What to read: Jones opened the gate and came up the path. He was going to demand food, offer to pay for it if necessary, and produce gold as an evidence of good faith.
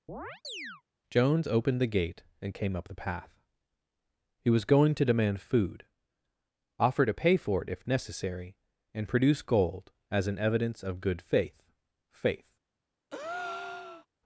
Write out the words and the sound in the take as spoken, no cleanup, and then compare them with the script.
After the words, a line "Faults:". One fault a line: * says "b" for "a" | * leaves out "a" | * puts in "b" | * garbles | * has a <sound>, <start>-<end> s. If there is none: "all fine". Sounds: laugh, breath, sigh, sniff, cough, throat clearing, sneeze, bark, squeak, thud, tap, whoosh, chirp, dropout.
Jones opened the gate and came up the path. He was going to demand food, offer to pay for it if necessary, and produce gold as an evidence of good faith faith.
Faults:
* has a chirp, 0.1-0.8 s
* puts in "faith"
* has a breath, 13.1-14.1 s